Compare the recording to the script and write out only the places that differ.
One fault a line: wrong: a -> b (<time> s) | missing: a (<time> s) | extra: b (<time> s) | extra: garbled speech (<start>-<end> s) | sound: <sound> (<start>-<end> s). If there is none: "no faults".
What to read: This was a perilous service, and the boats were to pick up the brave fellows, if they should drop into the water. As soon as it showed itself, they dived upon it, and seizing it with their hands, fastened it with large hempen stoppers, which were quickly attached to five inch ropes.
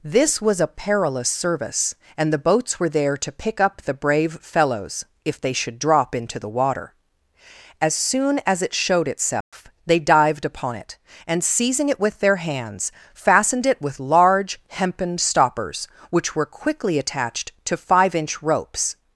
extra: there (2.9 s)
sound: dropout (9.4-9.5 s)